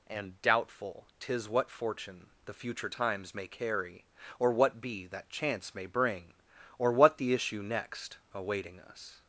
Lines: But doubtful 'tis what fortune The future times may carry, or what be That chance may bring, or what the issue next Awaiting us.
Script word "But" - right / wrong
wrong